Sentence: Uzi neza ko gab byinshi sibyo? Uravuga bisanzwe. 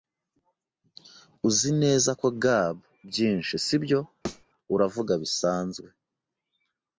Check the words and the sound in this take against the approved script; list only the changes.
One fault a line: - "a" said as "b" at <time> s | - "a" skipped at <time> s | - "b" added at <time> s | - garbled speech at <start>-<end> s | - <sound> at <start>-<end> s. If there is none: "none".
- thud at 4.2-4.4 s